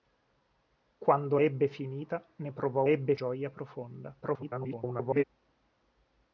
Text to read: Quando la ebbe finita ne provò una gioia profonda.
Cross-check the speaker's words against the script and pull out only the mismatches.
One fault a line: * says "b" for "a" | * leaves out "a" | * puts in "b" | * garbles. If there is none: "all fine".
* leaves out "la"
* says "ebbe" for "una"
* garbles